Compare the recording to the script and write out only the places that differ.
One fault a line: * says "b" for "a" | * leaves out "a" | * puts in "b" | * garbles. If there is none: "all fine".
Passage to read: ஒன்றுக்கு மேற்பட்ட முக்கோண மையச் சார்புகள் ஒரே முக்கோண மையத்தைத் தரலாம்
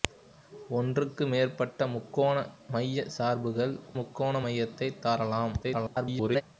* leaves out "ஒரே"
* garbles